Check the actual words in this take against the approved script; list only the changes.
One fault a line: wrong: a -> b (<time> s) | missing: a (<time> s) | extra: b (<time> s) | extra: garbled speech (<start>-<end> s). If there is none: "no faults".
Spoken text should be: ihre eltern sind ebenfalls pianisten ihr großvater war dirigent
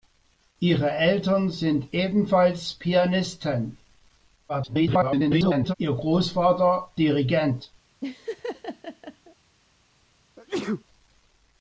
extra: garbled speech (4.5-5.7 s)
missing: war (6.9 s)